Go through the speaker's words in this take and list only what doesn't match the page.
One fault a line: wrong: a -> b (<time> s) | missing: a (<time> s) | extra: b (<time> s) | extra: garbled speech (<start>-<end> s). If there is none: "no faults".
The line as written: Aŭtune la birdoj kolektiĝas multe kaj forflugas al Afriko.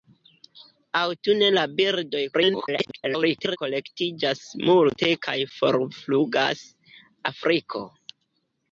extra: garbled speech (2.3-3.6 s)
missing: al (6.7 s)